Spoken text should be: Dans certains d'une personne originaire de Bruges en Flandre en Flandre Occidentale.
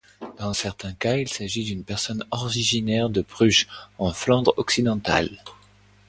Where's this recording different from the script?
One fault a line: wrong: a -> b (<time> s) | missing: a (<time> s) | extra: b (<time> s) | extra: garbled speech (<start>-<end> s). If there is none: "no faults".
extra: cas il s'agit (0.9 s)
missing: en Flandre (4.5 s)